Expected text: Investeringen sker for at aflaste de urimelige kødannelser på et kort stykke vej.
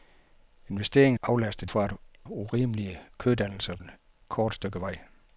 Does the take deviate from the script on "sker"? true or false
true